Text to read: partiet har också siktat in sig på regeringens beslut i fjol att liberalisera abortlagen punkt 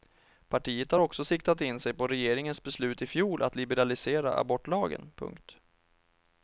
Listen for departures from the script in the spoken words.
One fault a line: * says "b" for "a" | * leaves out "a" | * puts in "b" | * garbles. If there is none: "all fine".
all fine